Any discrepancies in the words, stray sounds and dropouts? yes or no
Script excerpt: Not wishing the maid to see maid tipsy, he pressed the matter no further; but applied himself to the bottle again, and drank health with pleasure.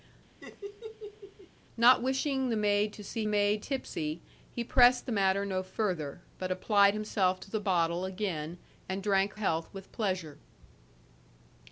yes